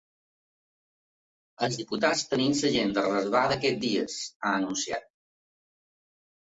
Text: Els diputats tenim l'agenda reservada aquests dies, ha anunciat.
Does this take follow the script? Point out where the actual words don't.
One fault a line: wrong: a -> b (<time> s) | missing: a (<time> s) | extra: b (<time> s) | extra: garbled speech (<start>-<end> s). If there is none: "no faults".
no faults